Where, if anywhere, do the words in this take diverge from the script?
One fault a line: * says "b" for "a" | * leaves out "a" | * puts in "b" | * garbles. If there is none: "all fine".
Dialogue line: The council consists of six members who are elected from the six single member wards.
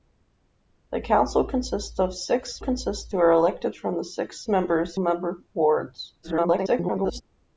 * says "consists" for "members"
* says "members" for "single"
* garbles